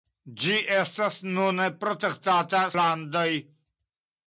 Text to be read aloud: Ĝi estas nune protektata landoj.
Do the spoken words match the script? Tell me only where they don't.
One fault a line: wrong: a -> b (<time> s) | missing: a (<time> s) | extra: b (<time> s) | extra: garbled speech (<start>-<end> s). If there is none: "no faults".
no faults